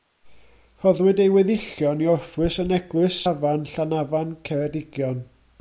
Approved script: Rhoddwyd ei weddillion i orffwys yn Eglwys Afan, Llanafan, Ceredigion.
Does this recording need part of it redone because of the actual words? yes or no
no